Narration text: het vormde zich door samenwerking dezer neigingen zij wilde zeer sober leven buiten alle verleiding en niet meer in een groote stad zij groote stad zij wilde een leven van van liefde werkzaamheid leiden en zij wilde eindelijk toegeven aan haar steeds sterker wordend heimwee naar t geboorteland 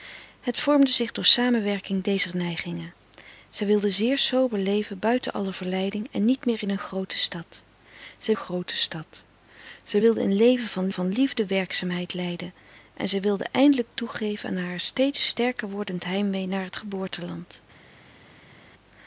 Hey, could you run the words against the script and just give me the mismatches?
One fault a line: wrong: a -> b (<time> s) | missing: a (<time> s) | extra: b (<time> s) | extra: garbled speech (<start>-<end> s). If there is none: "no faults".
no faults